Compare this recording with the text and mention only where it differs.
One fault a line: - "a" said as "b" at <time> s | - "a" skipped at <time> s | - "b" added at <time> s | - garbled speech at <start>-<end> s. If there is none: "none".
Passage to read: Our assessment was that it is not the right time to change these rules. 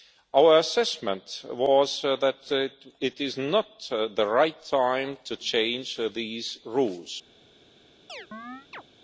none